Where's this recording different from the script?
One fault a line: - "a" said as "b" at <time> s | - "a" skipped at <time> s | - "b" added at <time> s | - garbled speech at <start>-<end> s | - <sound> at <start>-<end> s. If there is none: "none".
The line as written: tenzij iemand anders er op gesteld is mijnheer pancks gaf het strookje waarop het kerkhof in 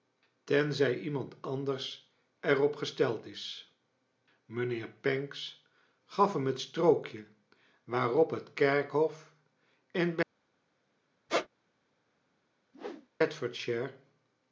- "hem" added at 6.3 s
- squeak at 11.3-11.5 s
- whoosh at 12.7-13.1 s